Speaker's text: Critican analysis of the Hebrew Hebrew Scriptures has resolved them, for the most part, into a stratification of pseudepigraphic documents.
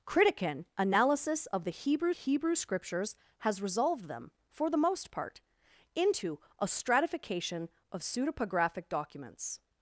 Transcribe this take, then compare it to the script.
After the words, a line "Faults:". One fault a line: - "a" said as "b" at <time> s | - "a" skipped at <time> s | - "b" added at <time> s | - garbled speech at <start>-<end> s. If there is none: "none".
Critican analysis of the Hebrew Hebrew Scriptures has resolved them, for the most part, into a stratification of pseudepigraphic documents.
Faults:
none